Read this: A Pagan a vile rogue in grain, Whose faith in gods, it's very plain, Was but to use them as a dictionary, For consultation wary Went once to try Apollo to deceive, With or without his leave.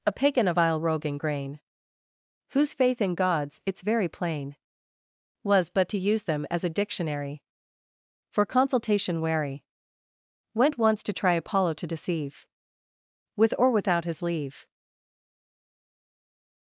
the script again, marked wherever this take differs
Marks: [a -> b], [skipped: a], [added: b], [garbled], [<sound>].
A Pagan a vile rogue in grain, Whose faith in gods, it's very plain, Was but to use them as a dictionary, For consultation wary Went once to try Apollo to deceive, With or without his leave.